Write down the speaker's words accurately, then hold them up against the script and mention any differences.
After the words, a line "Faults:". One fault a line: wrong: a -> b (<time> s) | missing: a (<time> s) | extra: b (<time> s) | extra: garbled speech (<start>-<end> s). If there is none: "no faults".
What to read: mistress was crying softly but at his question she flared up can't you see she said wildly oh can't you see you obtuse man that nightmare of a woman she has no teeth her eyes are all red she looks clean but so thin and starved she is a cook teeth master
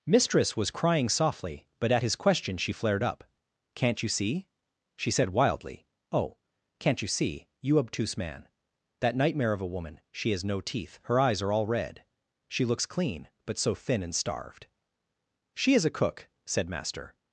mistress was crying softly but at his question she flared up can't you see she said wildly oh can't you see you obtuse man that nightmare of a woman she has no teeth her eyes are all red she looks clean but so thin and starved she is a cook said master
Faults:
wrong: teeth -> said (16.4 s)